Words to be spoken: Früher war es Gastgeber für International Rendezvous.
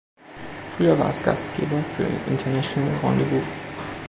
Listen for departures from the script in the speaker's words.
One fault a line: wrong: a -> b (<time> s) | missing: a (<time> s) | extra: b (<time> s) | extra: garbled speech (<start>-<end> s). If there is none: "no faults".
no faults